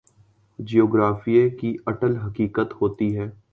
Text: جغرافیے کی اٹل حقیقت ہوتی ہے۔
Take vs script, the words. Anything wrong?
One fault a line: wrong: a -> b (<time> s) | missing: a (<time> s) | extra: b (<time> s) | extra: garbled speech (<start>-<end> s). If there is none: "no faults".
no faults